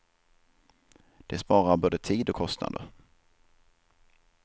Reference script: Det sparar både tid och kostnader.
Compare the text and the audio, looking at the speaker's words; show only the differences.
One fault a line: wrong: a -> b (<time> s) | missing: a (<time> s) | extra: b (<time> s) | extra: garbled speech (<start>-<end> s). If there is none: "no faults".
no faults